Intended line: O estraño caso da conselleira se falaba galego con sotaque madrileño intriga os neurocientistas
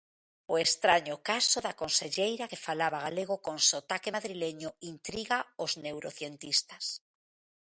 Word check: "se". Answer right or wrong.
wrong